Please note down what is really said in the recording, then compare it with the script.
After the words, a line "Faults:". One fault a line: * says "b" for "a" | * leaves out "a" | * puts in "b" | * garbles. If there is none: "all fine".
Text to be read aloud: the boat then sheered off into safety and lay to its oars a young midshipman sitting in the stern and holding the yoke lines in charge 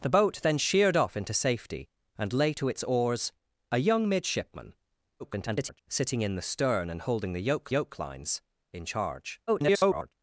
the boat then sheered off into safety and lay to its oars a young midshipman [garbled] sitting in the stern and holding the yoke yoke lines in charge [garbled]
Faults:
* garbles
* puts in "yoke"
* garbles